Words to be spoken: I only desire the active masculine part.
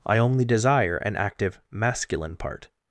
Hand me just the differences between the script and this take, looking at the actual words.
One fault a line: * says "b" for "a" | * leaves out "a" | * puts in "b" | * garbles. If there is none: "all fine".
* says "an" for "the"